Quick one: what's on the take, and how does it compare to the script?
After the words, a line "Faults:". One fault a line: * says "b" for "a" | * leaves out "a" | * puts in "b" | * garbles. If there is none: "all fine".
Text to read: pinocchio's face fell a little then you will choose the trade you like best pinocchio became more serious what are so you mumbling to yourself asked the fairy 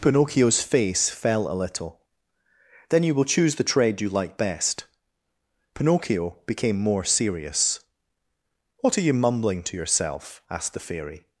pinocchio's face fell a little then you will choose the trade you like best pinocchio became more serious what are you mumbling to yourself asked the fairy
Faults:
* leaves out "so"